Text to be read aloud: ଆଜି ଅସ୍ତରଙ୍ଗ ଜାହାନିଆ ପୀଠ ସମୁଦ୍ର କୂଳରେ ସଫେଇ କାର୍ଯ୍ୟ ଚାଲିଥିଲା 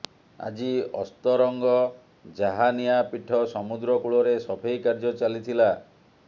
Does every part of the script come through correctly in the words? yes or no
yes